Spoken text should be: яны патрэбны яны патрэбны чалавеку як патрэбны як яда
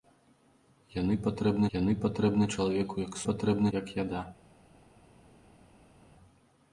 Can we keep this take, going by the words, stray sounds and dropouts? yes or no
yes